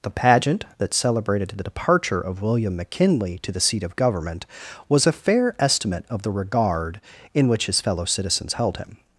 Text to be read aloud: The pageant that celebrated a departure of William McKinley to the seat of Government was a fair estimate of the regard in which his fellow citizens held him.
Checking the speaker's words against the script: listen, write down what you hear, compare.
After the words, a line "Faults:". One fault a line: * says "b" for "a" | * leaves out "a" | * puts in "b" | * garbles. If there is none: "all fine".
The pageant that celebrated the departure of William McKinley to the seat of Government was a fair estimate of the regard in which his fellow citizens held him.
Faults:
* says "the" for "a"